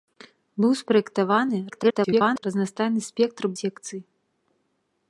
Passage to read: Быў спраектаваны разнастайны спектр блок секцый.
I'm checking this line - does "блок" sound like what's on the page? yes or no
no